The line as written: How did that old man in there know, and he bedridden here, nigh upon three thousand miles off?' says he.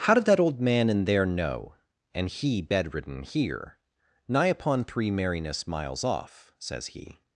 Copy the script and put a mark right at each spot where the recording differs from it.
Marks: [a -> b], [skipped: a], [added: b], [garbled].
How did that old man in there know, and he bedridden here, nigh upon three [thousand -> merriness] miles off?' says he.